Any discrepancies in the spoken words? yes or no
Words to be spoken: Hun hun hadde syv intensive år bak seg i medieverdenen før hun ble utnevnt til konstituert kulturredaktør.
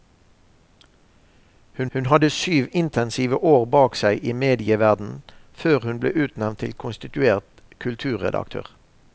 no